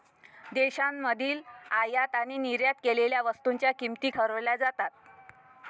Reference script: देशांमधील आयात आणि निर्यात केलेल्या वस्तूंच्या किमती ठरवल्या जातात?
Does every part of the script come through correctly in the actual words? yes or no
yes